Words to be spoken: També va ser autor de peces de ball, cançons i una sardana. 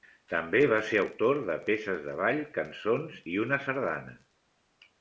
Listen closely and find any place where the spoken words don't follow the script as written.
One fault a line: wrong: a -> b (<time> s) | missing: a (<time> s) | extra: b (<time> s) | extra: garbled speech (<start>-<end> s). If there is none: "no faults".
no faults